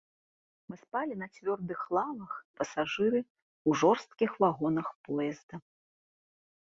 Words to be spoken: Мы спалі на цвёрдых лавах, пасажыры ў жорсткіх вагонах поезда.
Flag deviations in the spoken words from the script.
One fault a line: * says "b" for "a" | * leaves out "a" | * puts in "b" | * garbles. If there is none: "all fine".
all fine